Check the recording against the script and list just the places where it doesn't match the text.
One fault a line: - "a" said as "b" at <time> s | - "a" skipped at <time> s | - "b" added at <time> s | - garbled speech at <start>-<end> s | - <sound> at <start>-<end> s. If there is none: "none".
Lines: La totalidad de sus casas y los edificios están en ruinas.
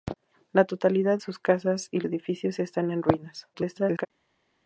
- "de" skipped at 1.2 s
- "los" skipped at 2.0 s
- garbled speech at 3.5-4.1 s